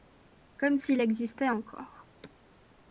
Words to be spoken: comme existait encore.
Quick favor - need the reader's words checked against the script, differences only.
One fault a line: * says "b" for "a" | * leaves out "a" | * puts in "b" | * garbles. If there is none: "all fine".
* puts in "s'il"